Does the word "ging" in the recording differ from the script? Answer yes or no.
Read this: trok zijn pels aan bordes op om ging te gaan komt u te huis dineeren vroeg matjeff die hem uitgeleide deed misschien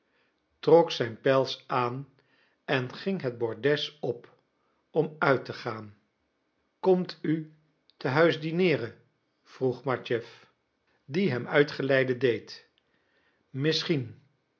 yes